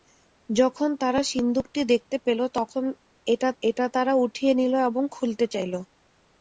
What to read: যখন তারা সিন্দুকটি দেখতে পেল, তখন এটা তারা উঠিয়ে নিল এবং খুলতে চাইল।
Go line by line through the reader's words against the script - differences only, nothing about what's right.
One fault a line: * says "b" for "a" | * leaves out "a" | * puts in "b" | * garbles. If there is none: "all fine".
* puts in "এটা"